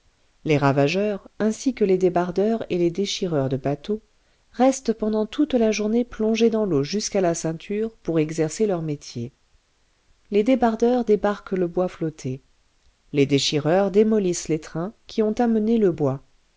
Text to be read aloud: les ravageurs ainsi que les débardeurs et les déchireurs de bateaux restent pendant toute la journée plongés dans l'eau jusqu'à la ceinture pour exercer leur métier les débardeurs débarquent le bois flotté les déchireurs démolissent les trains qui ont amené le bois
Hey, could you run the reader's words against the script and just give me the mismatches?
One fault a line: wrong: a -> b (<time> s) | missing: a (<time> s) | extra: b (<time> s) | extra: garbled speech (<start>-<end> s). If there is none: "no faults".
no faults